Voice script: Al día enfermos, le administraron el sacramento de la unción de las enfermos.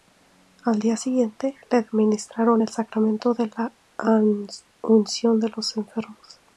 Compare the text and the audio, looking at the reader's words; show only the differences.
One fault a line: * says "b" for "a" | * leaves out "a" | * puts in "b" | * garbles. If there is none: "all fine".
* says "siguiente" for "enfermos"
* says "los" for "las"